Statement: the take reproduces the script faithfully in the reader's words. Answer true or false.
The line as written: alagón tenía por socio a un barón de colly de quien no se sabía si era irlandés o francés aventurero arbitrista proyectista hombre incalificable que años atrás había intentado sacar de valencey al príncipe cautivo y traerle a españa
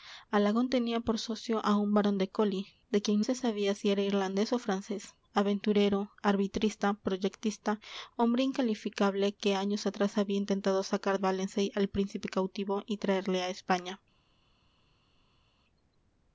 false